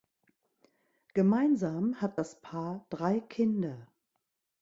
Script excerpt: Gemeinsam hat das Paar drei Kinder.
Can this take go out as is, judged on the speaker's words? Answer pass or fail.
pass